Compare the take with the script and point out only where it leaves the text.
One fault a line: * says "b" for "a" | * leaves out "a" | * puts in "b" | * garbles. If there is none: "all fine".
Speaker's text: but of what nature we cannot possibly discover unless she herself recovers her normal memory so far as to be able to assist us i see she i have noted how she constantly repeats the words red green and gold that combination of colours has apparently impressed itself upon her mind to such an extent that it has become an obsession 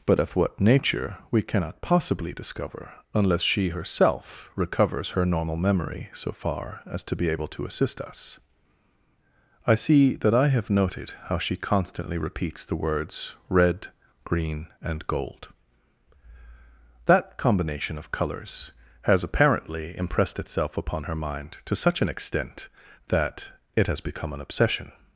* says "that" for "she"